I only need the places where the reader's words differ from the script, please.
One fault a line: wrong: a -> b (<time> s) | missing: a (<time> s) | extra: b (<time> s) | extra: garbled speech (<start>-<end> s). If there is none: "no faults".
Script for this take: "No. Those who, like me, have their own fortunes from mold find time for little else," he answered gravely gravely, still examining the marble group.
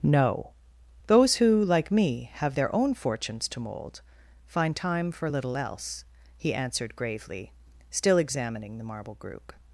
wrong: from -> to (3.5 s)
missing: gravely (7.5 s)